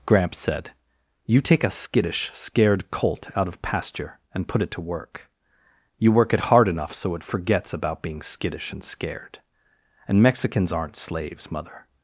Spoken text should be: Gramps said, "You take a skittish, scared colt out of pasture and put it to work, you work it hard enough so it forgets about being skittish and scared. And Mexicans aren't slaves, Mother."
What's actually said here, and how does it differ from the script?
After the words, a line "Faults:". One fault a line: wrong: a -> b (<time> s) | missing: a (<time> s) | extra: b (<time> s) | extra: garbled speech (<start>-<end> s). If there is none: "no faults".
Gramps said, "You take a skittish, scared colt out of pasture and put it to work, you work it hard enough so it forgets about being skittish and scared. And Mexicans aren't slaves, Mother."
Faults:
no faults